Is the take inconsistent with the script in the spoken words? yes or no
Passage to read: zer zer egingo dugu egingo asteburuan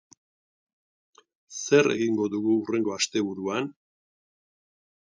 yes